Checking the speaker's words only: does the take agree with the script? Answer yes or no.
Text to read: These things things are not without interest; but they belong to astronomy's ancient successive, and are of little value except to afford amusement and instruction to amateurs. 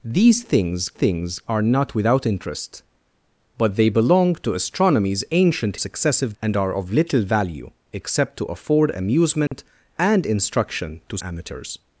yes